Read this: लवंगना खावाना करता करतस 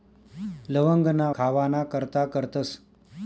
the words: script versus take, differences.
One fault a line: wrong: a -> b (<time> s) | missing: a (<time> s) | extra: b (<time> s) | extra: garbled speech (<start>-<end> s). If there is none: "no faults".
no faults